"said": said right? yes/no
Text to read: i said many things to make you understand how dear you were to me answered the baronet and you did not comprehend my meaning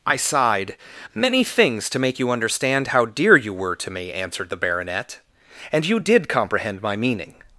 no